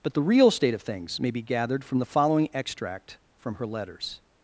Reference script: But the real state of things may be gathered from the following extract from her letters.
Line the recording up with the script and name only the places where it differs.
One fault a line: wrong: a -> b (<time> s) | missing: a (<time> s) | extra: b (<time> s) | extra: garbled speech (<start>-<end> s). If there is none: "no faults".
no faults